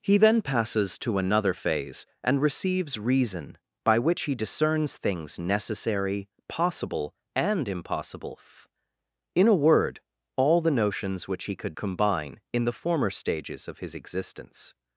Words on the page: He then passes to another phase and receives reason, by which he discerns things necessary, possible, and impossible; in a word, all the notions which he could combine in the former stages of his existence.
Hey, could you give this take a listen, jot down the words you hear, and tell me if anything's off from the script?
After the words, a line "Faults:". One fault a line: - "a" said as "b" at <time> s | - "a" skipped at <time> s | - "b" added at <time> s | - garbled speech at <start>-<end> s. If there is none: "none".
He then passes to another phase and receives reason, by which he discerns things necessary, possible, and impossible; in a word, all the notions which he could combine in the former stages of his existence.
Faults:
none